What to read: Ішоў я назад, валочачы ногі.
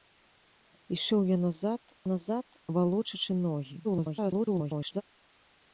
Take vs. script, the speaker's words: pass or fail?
fail